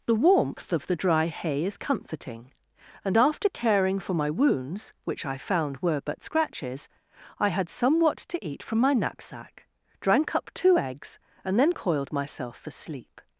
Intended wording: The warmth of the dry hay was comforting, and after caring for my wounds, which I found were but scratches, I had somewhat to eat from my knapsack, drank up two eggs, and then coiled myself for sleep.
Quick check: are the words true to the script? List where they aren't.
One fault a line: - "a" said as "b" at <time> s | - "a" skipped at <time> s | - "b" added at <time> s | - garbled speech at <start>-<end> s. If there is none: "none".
- "was" said as "is" at 1.6 s